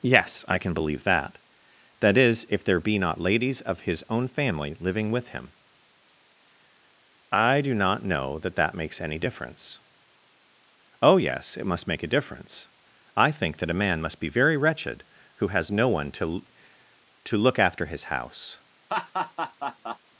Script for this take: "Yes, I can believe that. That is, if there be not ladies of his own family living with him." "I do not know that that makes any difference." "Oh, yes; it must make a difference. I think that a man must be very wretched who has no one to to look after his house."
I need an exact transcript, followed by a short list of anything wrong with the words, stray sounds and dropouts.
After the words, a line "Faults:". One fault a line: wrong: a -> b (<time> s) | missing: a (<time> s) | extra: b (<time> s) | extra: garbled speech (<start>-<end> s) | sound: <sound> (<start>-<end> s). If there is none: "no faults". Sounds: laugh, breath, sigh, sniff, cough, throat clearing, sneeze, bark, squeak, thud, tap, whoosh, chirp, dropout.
"Yes, I can believe that. That is, if there be not ladies of his own family living with him." "I do not know that that makes any difference." "Oh, yes; it must make a difference. I think that a man must be very wretched who has no one to to look after his house."
Faults:
sound: laugh (18.9-20.0 s)